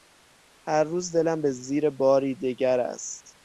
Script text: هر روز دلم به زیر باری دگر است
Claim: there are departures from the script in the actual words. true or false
false